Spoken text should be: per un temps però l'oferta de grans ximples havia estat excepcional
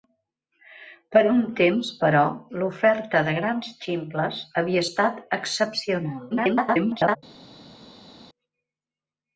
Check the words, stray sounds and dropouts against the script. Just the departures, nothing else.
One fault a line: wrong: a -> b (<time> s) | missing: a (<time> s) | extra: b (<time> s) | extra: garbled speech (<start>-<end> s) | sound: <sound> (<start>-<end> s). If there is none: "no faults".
extra: garbled speech (6.3-7.2 s)